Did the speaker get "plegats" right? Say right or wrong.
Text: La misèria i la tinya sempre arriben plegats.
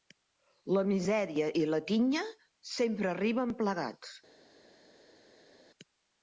right